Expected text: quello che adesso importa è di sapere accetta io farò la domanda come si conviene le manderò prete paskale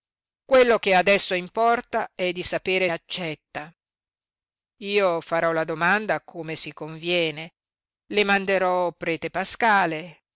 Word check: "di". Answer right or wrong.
right